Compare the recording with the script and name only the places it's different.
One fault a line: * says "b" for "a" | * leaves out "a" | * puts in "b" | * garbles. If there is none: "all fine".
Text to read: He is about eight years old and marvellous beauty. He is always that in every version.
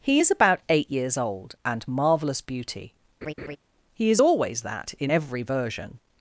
all fine